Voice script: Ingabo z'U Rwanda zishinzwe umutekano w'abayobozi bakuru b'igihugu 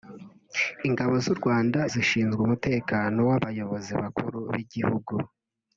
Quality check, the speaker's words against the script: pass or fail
pass